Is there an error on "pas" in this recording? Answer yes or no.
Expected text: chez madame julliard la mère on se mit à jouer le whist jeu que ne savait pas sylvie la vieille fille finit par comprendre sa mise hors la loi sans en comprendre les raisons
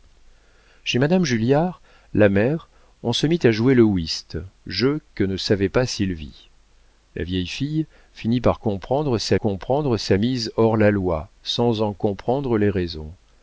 no